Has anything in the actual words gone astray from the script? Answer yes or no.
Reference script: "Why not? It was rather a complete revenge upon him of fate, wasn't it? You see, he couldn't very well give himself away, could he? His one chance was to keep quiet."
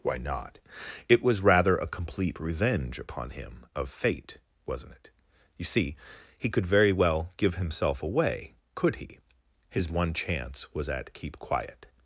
yes